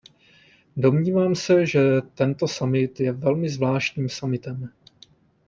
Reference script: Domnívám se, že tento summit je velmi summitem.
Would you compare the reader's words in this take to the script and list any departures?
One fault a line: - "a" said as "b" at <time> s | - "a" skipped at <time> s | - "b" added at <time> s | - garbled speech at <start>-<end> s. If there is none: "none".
- "zvláštním" added at 3.5 s